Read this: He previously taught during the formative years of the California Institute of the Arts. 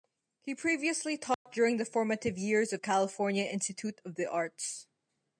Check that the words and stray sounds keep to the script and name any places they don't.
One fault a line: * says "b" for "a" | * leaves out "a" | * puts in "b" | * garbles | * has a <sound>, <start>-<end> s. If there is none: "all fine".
* has a dropout, 1.3-1.5 s
* leaves out "the"